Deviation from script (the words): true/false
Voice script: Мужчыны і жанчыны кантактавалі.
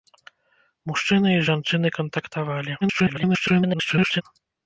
true